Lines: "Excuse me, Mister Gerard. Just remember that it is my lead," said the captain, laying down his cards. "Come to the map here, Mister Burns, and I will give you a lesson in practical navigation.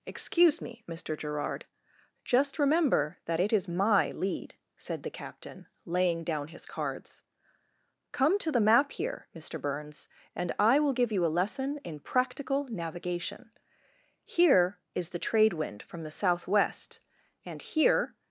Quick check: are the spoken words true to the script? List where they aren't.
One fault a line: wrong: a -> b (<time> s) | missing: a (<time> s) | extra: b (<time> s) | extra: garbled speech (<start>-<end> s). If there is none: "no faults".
extra: Here is the trade wind from the southwest and here (14.2 s)